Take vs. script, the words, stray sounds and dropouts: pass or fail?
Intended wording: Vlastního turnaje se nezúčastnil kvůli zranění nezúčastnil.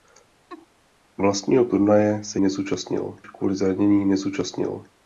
fail